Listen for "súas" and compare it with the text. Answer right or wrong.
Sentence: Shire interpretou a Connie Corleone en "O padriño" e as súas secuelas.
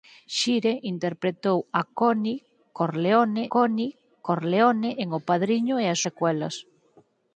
wrong